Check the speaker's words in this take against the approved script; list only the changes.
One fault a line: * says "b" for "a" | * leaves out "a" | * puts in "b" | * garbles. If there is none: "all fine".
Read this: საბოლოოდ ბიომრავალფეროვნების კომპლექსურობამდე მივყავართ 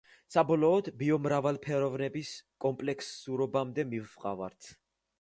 all fine